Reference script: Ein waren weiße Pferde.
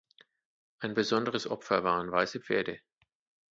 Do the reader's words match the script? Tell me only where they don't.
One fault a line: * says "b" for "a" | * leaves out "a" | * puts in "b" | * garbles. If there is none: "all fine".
* puts in "besonderes Opfer"